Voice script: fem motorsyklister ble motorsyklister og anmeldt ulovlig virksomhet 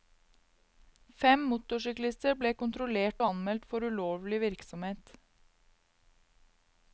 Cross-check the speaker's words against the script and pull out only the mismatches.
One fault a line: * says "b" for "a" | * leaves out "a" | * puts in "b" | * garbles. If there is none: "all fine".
* says "kontrollert" for "motorsyklister"
* puts in "for"